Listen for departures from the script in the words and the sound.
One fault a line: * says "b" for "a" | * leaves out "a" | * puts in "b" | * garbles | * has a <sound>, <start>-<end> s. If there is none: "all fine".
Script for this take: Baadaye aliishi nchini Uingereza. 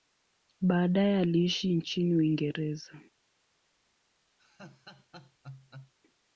* has a laugh, 4.4-5.9 s